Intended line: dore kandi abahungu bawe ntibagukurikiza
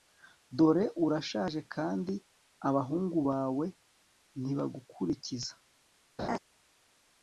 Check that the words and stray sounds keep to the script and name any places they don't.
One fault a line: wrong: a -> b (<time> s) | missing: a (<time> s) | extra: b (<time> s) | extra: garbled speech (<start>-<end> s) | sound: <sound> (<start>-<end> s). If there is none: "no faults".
extra: urashaje (1.1 s)
sound: laugh (6.2-6.4 s)